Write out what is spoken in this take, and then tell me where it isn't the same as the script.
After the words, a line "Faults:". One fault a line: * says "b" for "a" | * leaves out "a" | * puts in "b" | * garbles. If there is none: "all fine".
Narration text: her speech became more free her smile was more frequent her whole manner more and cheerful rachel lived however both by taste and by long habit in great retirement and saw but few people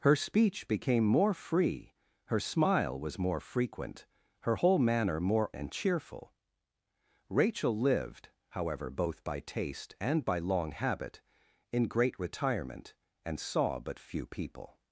her speech became more free her smile was more frequent her whole manner more and cheerful rachel lived however both by taste and by long habit in great retirement and saw but few people
Faults:
all fine